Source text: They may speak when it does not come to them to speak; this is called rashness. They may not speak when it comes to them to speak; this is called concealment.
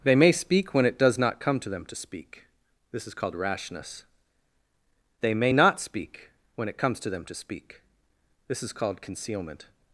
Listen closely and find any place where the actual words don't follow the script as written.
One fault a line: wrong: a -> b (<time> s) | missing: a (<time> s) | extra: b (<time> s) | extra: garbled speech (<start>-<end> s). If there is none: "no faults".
no faults